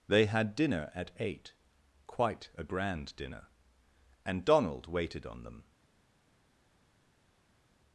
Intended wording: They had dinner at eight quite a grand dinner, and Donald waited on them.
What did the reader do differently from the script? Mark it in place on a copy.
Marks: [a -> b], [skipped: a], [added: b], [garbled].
They had dinner at eight quite a grand dinner, and Donald waited on them.